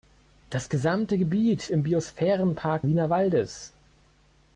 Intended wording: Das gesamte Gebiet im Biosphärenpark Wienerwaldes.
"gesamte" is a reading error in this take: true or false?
false